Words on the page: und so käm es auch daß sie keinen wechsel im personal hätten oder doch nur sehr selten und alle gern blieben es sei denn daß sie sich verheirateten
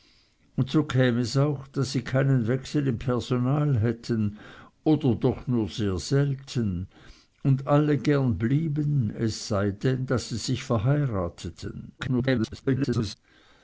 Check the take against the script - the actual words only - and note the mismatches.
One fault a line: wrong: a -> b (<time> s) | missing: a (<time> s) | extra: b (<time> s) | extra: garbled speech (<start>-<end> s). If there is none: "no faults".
extra: garbled speech (12.0-13.1 s)